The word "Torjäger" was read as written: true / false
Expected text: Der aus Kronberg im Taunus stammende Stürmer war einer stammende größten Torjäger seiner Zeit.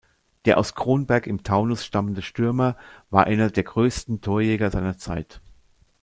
true